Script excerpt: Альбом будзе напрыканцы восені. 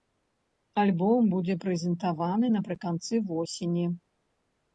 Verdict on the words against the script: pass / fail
fail